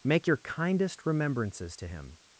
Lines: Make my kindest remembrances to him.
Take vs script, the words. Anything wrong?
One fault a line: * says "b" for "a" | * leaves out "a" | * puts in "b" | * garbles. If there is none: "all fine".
* says "your" for "my"